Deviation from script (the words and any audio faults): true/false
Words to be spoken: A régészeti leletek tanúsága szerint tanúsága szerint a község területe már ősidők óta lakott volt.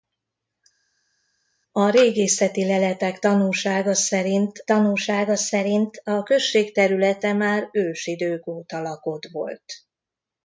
false